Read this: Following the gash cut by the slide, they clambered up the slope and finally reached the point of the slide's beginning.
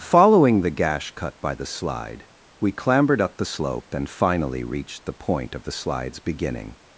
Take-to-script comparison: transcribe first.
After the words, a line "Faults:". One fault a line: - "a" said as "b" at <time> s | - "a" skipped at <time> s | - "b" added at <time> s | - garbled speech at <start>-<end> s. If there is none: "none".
Following the gash cut by the slide, we clambered up the slope and finally reached the point of the slide's beginning.
Faults:
- "they" said as "we" at 2.6 s